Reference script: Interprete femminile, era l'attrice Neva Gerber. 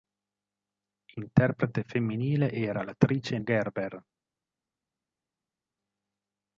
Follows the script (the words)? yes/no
no